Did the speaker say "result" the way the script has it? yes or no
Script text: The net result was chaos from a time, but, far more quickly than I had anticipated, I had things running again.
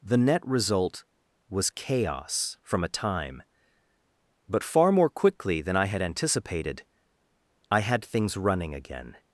yes